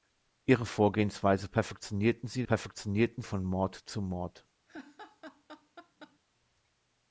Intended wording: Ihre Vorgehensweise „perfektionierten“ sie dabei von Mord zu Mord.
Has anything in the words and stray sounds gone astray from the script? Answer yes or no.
yes